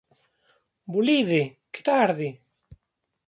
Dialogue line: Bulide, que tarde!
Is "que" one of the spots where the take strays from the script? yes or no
no